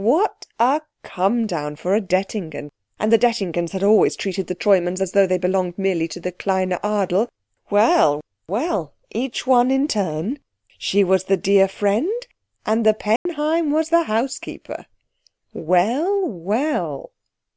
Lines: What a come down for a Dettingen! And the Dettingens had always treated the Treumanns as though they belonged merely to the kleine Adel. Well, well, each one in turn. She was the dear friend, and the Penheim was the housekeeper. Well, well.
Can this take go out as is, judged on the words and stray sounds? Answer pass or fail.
fail